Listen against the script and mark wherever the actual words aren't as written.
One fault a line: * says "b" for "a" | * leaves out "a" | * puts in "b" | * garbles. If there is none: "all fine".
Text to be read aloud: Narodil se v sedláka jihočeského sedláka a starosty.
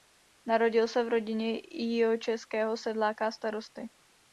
* says "rodině" for "sedláka"